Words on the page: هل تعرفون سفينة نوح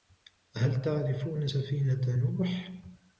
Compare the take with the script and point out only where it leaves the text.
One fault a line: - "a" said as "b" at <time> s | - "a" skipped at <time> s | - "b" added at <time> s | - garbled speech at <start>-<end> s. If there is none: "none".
none